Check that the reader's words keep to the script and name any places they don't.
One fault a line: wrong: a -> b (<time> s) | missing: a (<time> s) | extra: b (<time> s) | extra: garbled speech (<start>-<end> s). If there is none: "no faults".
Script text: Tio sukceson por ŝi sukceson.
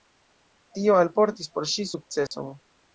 wrong: sukceson -> alportis (1.0 s)